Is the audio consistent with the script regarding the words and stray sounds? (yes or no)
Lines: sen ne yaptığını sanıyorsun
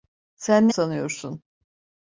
no